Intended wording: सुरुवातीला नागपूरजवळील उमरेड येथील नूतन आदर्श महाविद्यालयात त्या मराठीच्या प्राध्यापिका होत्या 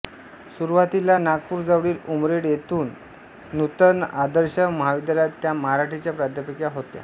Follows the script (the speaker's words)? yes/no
yes